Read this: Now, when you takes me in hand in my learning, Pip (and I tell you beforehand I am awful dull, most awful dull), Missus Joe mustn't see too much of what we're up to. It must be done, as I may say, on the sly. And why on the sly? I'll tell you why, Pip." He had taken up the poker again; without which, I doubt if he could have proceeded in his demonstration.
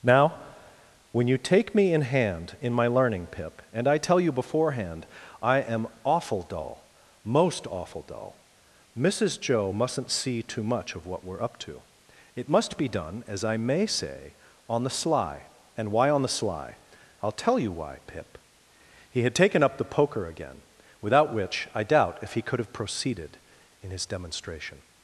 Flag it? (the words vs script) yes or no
yes